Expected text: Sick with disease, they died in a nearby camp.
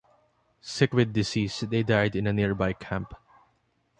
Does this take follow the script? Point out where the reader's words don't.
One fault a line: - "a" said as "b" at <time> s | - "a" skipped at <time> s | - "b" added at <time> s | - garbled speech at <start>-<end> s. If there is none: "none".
none